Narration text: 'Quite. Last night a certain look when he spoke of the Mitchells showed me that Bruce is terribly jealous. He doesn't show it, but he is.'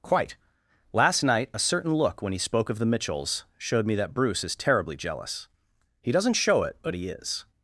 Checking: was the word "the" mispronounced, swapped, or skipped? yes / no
no